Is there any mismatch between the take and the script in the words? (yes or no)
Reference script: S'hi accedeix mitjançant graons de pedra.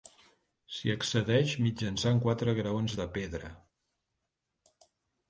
yes